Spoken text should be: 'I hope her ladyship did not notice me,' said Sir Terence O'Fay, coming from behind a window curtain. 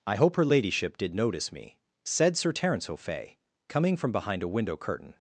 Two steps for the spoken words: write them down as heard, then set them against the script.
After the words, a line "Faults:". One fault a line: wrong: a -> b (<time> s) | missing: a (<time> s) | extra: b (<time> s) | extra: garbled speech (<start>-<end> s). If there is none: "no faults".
'I hope her ladyship did notice me,' said Sir Terence O'Fay, coming from behind a window curtain.
Faults:
missing: not (1.1 s)